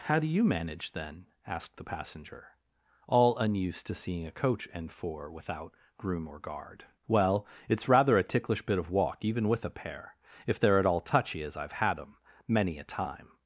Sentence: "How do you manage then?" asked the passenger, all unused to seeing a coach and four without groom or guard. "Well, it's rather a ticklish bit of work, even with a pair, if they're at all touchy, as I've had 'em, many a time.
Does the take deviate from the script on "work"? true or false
true